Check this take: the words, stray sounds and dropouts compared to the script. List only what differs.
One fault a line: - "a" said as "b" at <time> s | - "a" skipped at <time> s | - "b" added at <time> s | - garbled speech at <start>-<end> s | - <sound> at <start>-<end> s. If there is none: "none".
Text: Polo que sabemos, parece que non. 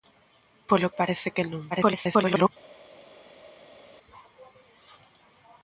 - "que sabemos" skipped at 0.9 s
- garbled speech at 1.7-2.5 s